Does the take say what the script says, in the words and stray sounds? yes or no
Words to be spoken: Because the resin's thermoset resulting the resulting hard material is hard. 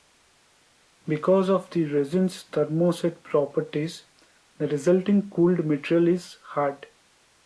no